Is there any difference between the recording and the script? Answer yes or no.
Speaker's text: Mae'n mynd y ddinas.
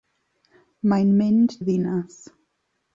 no